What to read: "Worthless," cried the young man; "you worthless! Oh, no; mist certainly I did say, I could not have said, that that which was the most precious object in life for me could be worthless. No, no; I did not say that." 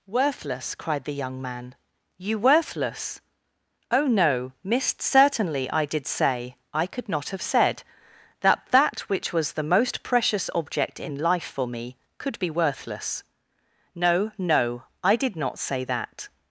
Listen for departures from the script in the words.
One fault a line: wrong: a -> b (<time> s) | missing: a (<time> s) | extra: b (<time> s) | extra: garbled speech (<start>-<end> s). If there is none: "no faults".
no faults